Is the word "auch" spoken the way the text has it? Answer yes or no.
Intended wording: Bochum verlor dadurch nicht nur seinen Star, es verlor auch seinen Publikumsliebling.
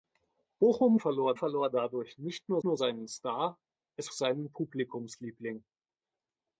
no